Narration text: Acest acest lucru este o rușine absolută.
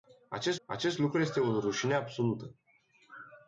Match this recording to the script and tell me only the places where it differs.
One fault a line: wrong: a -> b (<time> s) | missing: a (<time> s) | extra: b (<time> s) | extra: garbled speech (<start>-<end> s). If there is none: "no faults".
no faults